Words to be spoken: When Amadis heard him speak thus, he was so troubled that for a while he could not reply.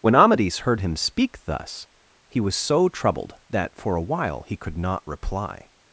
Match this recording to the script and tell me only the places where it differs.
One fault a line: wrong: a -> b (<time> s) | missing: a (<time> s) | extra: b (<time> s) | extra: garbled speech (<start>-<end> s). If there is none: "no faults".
no faults